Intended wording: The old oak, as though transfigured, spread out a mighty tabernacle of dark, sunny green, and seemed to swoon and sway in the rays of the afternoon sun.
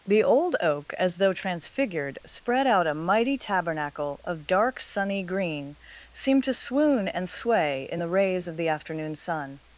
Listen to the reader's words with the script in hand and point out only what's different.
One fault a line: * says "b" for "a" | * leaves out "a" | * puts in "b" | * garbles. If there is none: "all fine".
* leaves out "and"